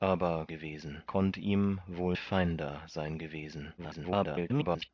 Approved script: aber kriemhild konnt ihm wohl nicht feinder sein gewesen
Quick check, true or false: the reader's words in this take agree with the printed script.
false